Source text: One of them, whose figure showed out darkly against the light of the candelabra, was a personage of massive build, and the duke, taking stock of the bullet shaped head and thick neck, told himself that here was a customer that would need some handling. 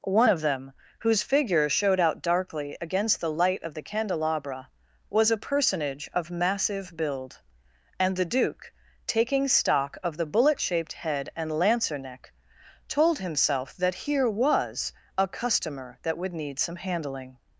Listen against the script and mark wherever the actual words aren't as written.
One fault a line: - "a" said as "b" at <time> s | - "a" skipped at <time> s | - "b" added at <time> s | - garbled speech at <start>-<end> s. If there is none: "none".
- "thick" said as "lancer" at 11.5 s